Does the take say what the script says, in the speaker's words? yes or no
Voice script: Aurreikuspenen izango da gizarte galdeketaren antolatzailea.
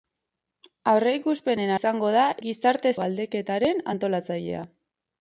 yes